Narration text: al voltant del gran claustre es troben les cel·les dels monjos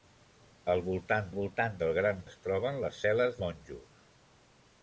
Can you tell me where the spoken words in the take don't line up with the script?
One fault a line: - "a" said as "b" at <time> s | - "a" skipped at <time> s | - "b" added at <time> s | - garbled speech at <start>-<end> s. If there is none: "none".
- "voltant" added at 1.4 s
- "claustre" skipped at 2.2 s
- "dels" skipped at 3.4 s